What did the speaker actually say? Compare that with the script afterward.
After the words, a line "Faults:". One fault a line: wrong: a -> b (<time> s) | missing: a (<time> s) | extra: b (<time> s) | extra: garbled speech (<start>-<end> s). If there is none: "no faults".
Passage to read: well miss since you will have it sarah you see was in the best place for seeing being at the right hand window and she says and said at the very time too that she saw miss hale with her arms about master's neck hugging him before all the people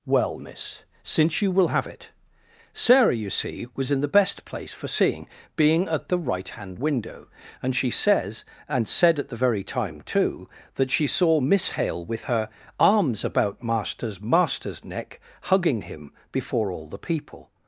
well miss since you will have it sarah you see was in the best place for seeing being at the right hand window and she says and said at the very time too that she saw miss hale with her arms about master's master's neck hugging him before all the people
Faults:
extra: master's (14.2 s)